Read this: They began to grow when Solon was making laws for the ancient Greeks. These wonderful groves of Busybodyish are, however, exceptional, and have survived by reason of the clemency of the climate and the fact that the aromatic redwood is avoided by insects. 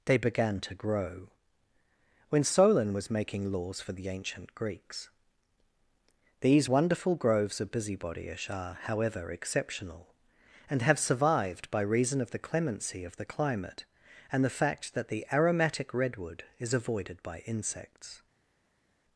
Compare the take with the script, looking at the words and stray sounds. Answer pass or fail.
pass